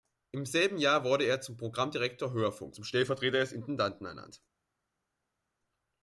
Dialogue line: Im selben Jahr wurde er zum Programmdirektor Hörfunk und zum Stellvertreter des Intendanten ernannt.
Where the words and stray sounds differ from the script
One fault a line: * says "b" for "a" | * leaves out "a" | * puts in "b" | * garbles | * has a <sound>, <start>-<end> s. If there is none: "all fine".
* leaves out "und"